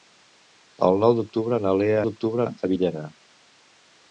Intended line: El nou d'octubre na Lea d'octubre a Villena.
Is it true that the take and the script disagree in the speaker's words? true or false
false